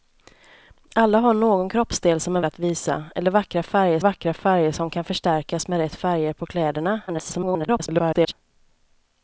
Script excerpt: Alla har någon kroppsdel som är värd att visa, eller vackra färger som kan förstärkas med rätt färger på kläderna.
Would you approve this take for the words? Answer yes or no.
no